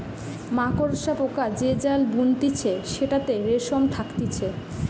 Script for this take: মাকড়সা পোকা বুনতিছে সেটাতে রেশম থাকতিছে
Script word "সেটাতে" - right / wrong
right